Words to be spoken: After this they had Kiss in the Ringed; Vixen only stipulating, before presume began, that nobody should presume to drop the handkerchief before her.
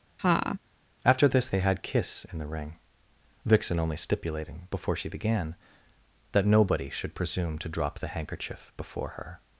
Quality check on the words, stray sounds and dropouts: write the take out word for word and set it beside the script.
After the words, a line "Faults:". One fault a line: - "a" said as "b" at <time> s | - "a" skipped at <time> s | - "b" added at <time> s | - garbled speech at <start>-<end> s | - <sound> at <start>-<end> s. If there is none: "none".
After this they had Kiss in the Ring; Vixen only stipulating, before she began, that nobody should presume to drop the handkerchief before her.
Faults:
- laugh at 0.2-0.6 s
- "Ringed" said as "Ring" at 2.5 s
- "presume" said as "she" at 5.0 s